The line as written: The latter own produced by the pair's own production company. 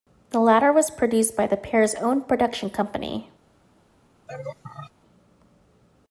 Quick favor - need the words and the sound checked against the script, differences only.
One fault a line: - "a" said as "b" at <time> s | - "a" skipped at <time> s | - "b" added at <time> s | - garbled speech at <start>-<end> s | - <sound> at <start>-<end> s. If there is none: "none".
- "own" said as "was" at 0.7 s
- laugh at 4.3-4.9 s